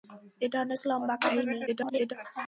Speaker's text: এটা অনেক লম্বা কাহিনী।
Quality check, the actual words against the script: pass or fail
fail